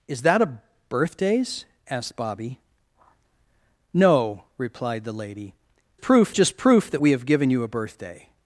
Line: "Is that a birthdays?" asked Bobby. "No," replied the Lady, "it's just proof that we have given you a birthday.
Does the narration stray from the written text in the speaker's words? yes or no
yes